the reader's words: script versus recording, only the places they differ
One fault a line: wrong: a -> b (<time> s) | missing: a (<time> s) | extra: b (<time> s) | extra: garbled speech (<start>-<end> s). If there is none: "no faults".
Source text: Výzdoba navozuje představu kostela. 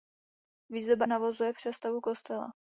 no faults